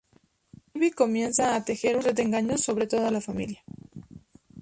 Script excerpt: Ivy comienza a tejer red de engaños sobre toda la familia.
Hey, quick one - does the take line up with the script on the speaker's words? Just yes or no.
yes